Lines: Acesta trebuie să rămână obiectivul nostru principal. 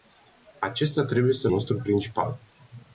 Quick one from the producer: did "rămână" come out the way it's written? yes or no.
no